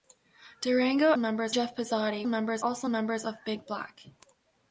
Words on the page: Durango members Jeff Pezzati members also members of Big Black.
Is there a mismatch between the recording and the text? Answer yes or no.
no